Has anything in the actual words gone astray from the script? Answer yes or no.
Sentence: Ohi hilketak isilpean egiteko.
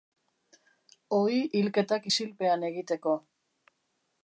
no